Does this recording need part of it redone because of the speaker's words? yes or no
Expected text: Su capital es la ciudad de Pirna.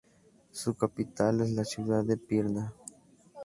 no